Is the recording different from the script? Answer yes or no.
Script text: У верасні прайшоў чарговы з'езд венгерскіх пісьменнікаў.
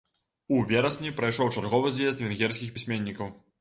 no